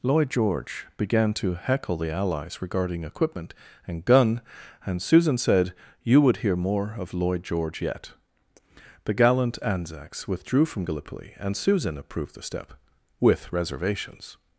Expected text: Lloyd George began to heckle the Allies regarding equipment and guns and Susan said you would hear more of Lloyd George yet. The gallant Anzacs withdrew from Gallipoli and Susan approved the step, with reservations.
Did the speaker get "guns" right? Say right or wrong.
wrong